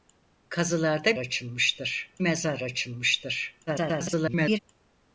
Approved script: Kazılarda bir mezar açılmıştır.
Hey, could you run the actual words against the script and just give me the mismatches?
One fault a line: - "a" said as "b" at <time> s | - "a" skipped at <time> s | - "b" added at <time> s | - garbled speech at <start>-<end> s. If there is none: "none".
- "bir" said as "açılmıştır" at 1.2 s
- garbled speech at 3.7-4.6 s